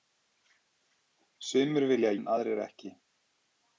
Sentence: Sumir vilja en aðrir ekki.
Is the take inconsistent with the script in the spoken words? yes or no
no